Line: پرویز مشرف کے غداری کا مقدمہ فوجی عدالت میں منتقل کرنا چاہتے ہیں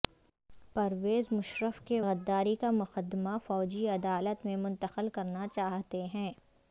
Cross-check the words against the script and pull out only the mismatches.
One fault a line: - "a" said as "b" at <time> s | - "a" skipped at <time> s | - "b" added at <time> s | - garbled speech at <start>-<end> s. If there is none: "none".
none